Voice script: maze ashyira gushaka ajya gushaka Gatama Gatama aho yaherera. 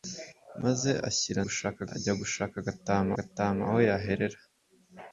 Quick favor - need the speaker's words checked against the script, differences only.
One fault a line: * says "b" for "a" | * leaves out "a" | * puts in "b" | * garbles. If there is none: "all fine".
all fine